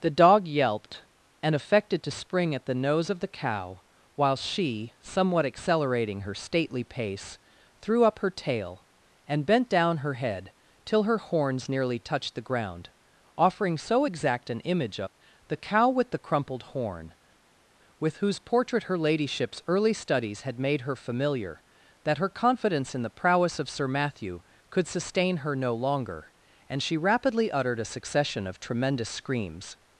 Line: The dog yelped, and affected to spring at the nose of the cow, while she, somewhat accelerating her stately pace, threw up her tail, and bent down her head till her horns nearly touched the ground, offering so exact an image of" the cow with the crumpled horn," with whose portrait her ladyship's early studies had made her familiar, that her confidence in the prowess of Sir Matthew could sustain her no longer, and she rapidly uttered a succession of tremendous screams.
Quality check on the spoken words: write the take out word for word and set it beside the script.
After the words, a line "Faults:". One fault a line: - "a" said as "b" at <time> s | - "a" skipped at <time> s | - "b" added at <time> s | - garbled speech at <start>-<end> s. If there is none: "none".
The dog yelped, and affected to spring at the nose of the cow, while she, somewhat accelerating her stately pace, threw up her tail, and bent down her head till her horns nearly touched the ground, offering so exact an image of" the cow with the crumpled horn," with whose portrait her ladyship's early studies had made her familiar, that her confidence in the prowess of Sir Matthew could sustain her no longer, and she rapidly uttered a succession of tremendous screams.
Faults:
none